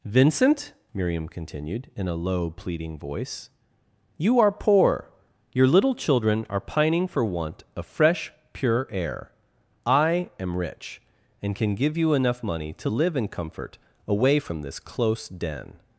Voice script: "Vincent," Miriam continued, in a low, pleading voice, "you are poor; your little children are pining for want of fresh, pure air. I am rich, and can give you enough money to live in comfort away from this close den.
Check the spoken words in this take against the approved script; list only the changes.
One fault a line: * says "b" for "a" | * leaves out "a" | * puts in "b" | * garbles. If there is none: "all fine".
all fine